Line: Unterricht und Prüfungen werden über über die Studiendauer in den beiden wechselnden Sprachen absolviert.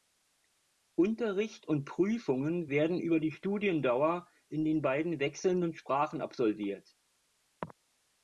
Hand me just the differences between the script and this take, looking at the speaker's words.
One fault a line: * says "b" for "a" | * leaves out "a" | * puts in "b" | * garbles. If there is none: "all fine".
* leaves out "über"